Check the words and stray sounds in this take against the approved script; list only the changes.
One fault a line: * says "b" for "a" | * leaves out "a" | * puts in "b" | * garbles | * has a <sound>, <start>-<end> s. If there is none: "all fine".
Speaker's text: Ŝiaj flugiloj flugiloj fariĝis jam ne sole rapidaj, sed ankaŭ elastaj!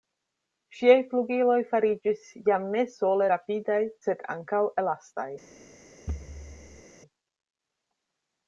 * leaves out "flugiloj"
* has a thud, 6.1-6.8 s